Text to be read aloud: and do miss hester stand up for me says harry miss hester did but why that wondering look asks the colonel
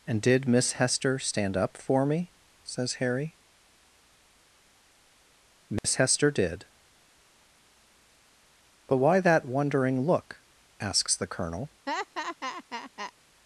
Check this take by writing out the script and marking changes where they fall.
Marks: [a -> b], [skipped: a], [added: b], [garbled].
and [do -> did] miss hester stand up for me says harry miss hester did but why that wondering look asks the colonel